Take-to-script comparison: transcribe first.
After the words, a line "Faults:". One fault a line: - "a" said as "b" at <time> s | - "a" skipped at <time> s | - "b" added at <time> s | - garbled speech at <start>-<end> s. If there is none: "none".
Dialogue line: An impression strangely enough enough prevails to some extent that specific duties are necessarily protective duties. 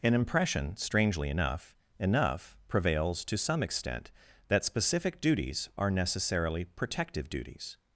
An impression strangely enough enough prevails to some extent that specific duties are necessarily protective duties.
Faults:
none